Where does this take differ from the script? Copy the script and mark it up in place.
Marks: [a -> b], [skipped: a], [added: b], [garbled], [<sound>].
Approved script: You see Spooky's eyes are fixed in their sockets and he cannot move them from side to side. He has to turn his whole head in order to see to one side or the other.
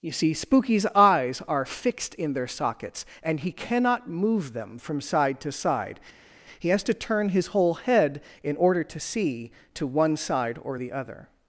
You see Spooky's eyes are fixed in their sockets and he cannot move them from side to side. He has to turn his whole head in order to see to one side or the other.